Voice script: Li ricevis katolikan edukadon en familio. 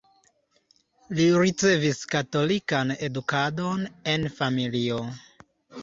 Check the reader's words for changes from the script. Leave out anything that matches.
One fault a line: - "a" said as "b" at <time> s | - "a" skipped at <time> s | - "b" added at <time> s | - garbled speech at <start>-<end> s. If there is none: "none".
none